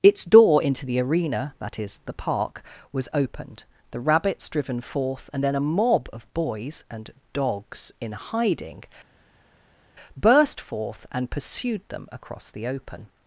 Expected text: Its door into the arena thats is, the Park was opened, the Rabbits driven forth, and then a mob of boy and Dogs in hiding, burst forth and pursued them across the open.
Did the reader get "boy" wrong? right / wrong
wrong